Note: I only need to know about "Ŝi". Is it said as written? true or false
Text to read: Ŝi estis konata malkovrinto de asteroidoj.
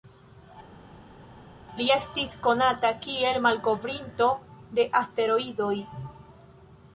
false